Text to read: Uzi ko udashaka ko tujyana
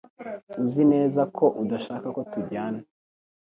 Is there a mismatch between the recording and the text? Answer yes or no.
yes